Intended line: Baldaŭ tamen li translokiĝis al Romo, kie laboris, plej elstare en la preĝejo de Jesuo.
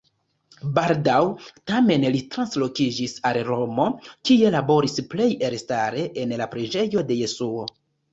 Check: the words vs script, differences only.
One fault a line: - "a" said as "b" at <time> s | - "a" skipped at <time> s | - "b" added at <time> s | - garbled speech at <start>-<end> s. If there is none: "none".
none